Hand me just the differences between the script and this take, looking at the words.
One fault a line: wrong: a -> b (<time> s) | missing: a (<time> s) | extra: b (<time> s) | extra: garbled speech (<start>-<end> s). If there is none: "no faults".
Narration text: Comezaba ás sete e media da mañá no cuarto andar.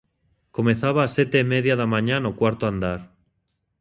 no faults